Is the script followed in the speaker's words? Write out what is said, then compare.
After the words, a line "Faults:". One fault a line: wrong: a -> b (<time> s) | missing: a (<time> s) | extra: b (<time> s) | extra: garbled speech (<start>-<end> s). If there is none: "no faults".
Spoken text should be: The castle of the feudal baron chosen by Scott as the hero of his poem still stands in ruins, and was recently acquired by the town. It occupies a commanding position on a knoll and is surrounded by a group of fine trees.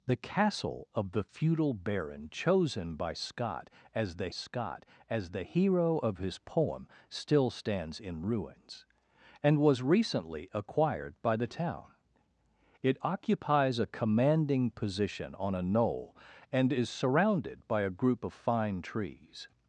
The castle of the feudal baron chosen by Scott as the Scott as the hero of his poem still stands in ruins, and was recently acquired by the town. It occupies a commanding position on a knoll and is surrounded by a group of fine trees.
Faults:
extra: Scott as the (4.3 s)